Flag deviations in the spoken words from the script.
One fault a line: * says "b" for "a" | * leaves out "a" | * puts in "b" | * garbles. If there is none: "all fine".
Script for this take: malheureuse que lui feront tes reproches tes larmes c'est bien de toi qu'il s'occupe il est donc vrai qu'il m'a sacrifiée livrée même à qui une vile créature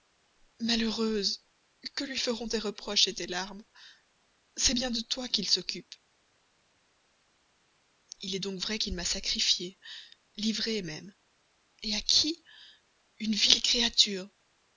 all fine